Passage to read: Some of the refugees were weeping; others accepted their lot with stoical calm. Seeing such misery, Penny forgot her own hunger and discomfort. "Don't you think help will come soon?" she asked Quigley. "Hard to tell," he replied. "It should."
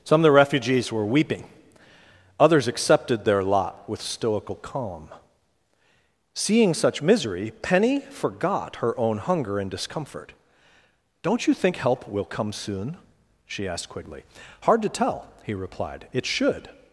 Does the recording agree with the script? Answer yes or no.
yes